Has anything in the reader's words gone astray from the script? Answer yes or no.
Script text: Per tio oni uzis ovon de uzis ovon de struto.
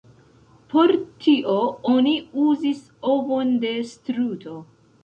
yes